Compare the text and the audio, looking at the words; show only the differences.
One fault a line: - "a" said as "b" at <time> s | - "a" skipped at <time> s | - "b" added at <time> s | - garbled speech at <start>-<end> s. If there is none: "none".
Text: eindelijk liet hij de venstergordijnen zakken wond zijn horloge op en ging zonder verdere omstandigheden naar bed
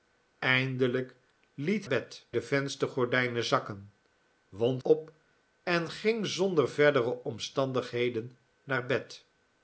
- "hij" said as "bed" at 1.9 s
- "zijn horloge" skipped at 4.8 s